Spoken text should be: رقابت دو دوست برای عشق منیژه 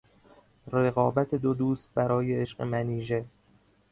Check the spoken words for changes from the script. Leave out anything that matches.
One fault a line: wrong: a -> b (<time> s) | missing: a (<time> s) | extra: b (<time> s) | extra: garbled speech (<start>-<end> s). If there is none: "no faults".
no faults